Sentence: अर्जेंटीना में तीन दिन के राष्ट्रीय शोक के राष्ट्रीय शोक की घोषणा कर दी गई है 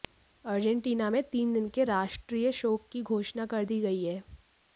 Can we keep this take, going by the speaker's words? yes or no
no